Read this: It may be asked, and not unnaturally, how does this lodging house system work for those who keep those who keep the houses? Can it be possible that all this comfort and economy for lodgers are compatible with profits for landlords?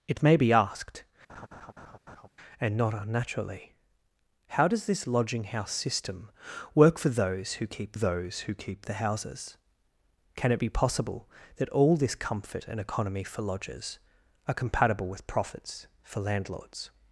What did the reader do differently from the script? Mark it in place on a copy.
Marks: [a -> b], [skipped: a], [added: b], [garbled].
It may be asked, and not unnaturally, how does this lodging house system work for those who keep those who keep the houses? Can it be possible that all this comfort and economy for lodgers are compatible with profits for landlords?